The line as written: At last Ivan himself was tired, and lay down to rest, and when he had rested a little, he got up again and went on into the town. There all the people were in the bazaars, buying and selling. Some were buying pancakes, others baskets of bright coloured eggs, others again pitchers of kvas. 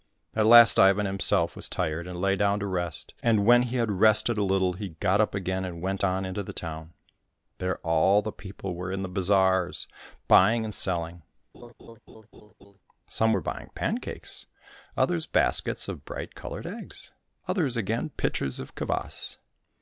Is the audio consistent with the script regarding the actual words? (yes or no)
yes